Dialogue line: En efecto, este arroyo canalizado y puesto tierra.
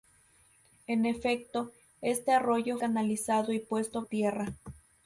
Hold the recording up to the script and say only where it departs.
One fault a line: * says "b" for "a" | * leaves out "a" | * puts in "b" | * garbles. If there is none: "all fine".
all fine